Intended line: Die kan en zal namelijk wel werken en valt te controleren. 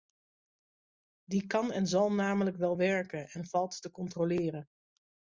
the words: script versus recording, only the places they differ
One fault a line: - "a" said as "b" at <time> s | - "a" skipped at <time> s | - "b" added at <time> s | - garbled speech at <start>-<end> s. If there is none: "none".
none